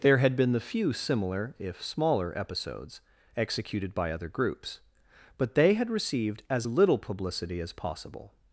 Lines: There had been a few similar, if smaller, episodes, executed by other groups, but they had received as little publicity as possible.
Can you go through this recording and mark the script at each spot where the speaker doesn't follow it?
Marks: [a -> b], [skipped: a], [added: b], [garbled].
There had been [a -> the] few similar, if smaller, episodes, executed by other groups, but they had received as little publicity as possible.